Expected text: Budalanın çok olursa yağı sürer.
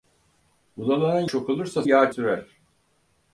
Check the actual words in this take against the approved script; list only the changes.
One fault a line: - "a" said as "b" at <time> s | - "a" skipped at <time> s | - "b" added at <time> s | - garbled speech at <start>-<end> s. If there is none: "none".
none